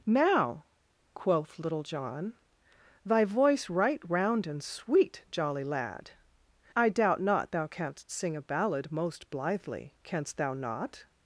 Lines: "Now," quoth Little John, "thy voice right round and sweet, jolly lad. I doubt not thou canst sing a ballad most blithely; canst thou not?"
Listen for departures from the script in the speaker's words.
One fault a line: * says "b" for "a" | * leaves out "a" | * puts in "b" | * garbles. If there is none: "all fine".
all fine